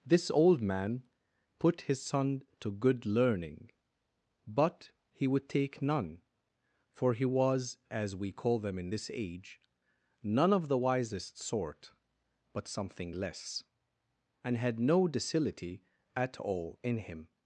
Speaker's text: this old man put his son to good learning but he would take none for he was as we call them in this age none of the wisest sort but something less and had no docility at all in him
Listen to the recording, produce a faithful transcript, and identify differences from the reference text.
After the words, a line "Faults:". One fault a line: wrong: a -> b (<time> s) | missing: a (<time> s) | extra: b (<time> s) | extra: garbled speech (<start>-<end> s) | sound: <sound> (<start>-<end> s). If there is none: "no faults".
this old man put his son to good learning but he would take none for he was as we call them in this age none of the wisest sort but something less and had no docility at all in him
Faults:
no faults